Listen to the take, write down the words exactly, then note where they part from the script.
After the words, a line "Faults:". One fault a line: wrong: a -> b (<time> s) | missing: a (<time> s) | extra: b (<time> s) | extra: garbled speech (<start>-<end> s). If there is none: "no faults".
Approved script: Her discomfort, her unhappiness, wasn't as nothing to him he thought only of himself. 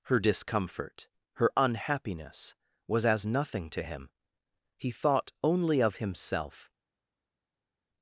Her discomfort, her unhappiness, was as nothing to him he thought only of himself.
Faults:
wrong: wasn't -> was (2.9 s)